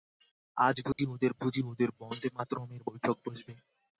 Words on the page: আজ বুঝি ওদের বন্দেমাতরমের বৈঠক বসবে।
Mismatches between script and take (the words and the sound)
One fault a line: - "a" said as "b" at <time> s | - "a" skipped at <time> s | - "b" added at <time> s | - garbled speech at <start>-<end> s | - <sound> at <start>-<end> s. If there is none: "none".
- dropout at 0.9-1.0 s
- "বুঝি ওদের" added at 1.4 s